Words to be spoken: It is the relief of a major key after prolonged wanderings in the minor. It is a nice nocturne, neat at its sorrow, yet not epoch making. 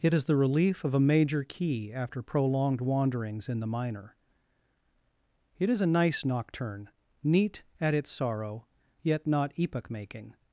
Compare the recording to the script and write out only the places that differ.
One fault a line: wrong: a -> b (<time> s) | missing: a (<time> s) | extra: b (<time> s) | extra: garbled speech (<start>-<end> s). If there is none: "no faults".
no faults